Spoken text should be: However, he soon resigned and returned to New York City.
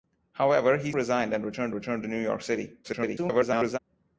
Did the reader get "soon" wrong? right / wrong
wrong